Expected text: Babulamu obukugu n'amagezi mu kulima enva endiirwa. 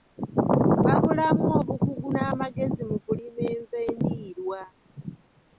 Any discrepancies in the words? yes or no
no